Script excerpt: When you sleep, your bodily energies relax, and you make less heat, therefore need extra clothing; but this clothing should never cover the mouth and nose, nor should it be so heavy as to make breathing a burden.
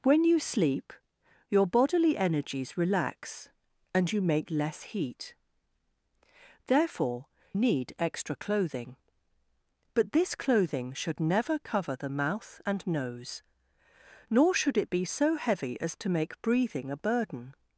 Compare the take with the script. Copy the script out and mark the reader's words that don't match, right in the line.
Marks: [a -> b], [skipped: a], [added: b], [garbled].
When you sleep, your bodily energies relax, and you make less heat, therefore need extra clothing; but this clothing should never cover the mouth and nose, nor should it be so heavy as to make breathing a burden.